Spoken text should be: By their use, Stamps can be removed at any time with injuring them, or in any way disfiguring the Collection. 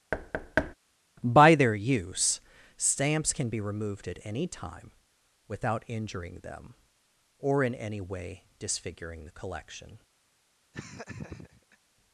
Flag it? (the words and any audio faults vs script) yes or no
yes